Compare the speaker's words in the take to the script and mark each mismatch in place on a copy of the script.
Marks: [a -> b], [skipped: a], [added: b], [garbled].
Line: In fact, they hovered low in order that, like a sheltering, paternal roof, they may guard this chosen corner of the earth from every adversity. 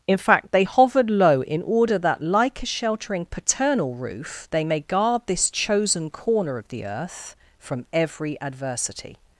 In fact, they hovered low in order that, like a sheltering, paternal roof, they may guard this chosen corner of the earth from every adversity.